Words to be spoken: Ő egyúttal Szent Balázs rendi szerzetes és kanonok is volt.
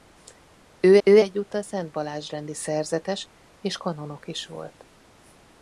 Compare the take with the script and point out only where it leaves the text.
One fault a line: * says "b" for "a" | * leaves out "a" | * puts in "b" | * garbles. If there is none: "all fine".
* puts in "ő"